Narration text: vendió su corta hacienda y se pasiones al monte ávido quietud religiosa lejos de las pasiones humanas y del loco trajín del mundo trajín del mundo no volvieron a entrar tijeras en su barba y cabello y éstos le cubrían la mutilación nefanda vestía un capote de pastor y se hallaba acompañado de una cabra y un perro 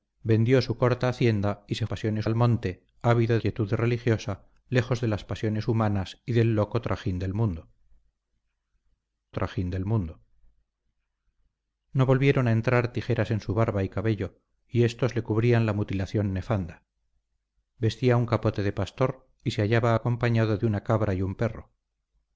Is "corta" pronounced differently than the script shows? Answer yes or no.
no